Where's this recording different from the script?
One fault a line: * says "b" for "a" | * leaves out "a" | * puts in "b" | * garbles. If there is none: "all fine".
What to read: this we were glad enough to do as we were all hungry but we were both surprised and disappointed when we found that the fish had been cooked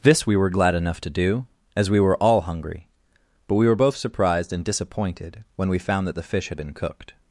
all fine